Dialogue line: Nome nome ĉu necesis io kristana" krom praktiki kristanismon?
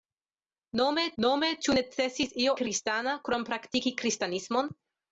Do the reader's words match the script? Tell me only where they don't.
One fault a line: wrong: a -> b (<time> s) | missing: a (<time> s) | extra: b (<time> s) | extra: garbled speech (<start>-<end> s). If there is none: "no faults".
no faults